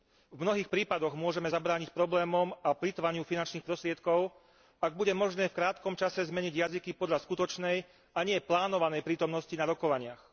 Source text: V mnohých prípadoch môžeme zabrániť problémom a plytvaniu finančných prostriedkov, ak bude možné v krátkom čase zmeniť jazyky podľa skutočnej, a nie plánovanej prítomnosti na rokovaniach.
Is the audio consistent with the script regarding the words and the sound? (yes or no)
yes